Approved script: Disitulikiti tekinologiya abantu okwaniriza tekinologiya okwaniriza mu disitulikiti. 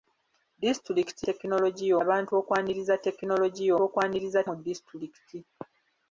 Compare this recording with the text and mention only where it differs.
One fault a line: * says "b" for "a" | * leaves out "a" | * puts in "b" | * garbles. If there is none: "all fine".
all fine